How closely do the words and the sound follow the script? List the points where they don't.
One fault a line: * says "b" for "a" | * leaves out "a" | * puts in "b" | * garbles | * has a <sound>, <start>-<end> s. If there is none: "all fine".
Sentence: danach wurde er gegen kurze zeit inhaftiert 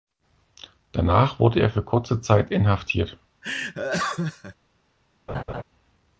* says "für" for "gegen"
* has a laugh, 3.4-4.5 s
* has a laugh, 5.3-5.6 s